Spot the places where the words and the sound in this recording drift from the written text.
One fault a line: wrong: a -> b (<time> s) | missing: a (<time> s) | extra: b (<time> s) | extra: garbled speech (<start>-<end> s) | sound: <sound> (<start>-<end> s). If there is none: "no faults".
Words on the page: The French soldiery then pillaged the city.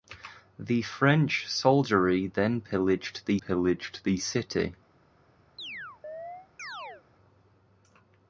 extra: pillaged the (3.3 s)
sound: chirp (5.6-7.0 s)